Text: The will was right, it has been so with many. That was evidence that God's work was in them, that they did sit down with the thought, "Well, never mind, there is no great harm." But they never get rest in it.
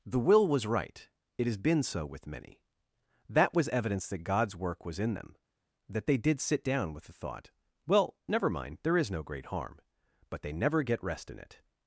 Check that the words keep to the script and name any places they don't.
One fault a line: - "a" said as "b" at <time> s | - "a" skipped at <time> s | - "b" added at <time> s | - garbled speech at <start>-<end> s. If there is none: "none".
none